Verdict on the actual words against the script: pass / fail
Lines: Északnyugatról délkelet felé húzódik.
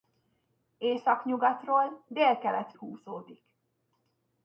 fail